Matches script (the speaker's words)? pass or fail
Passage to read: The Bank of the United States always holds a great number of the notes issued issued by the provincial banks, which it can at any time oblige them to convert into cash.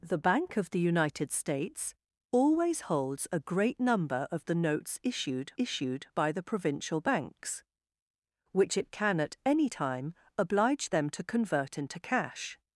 pass